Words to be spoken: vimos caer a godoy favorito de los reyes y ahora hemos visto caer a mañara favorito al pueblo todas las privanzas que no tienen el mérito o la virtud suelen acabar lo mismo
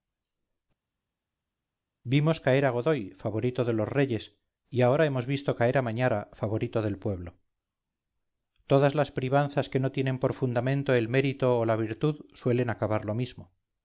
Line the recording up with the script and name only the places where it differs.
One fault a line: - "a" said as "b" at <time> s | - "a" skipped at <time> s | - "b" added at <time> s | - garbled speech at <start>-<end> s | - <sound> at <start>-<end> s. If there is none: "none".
- "al" said as "del" at 6.8 s
- "por fundamento" added at 10.2 s